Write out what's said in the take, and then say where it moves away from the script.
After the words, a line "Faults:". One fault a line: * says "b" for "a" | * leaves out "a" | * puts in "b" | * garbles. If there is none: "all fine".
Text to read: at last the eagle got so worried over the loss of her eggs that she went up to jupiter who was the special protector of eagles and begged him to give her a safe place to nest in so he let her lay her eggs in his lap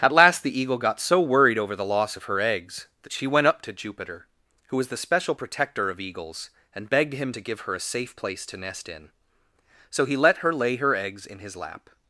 at last the eagle got so worried over the loss of her eggs that she went up to jupiter who was the special protector of eagles and begged him to give her a safe place to nest in so he let her lay her eggs in his lap
Faults:
all fine